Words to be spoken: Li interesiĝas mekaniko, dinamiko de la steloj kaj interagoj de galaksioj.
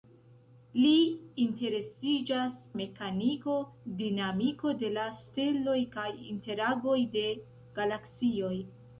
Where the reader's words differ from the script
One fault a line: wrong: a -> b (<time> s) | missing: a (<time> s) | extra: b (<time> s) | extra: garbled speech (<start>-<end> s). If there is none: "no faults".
no faults